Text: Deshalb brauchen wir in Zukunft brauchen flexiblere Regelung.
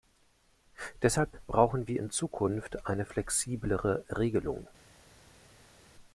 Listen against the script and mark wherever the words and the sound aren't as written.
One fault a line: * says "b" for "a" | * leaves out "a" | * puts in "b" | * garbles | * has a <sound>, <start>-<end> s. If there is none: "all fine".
* says "eine" for "brauchen"